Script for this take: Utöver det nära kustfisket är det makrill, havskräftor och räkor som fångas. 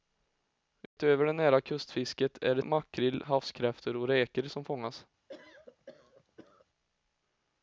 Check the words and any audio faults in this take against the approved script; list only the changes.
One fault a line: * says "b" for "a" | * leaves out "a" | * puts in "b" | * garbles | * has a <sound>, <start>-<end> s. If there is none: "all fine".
* has a dropout, 0.9-1.0 s
* has a cough, 5.3-6.7 s